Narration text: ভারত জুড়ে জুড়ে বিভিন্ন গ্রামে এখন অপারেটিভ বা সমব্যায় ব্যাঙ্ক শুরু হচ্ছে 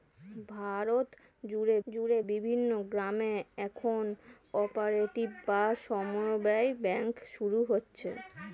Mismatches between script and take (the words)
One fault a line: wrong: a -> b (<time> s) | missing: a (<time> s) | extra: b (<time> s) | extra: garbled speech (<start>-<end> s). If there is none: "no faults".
no faults